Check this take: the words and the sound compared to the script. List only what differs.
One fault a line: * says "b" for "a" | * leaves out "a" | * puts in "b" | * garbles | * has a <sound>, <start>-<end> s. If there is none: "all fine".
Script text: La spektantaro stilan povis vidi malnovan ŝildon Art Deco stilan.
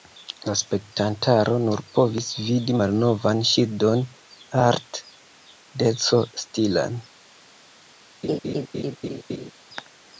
* says "nur" for "stilan"
* has a laugh, 8.2-9.5 s